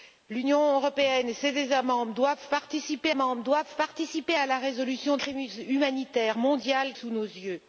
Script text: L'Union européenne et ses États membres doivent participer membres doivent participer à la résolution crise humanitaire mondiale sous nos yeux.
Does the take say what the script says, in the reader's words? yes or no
yes